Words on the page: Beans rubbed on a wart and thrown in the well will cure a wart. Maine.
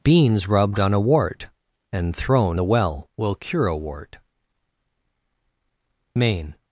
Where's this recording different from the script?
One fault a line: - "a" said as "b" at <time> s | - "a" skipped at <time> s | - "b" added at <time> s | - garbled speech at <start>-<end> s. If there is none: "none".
- "in" skipped at 2.6 s